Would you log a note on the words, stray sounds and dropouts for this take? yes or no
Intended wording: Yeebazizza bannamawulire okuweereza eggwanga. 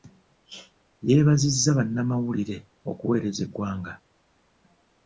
no